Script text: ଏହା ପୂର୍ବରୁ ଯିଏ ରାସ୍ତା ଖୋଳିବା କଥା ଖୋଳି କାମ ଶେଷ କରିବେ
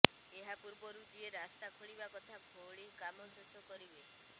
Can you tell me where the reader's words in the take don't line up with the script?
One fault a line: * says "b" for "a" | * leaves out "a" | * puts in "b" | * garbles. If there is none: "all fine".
all fine